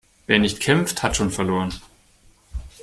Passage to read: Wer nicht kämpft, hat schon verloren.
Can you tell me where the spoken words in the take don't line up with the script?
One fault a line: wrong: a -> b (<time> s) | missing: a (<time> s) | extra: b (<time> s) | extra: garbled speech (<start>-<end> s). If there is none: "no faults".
no faults